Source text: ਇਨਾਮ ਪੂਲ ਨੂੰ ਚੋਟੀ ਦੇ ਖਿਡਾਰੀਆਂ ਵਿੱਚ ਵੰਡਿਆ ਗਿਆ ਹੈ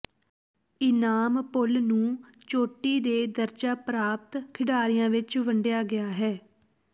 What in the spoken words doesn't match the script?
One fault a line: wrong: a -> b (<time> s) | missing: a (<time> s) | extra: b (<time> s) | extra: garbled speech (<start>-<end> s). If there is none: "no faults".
extra: ਦਰਜਾ ਪ੍ਰਾਪਤ (3.3 s)